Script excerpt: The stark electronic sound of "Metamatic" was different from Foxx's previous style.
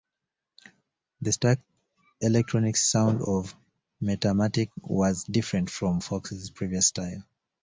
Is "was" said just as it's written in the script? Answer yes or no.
yes